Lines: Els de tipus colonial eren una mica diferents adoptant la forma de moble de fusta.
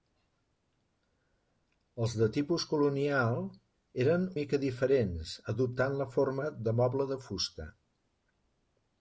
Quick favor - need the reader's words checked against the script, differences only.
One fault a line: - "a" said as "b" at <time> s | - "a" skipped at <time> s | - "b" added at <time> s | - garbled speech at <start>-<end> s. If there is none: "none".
- "una" skipped at 4.2 s